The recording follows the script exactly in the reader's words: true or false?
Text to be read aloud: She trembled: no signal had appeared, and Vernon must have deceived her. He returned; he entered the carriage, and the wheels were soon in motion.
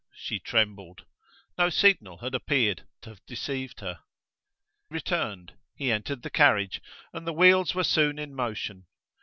false